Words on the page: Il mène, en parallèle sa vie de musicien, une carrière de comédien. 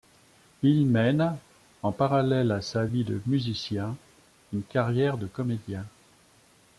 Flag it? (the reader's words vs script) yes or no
yes